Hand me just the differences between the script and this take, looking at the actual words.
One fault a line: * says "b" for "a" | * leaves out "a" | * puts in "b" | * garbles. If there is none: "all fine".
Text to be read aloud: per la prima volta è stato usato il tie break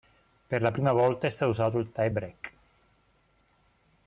all fine